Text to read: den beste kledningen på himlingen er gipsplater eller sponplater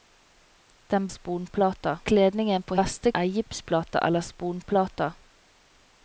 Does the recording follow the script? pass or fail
fail